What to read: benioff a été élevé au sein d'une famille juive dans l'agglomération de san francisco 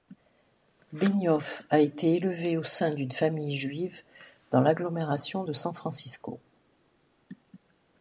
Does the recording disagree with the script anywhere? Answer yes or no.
no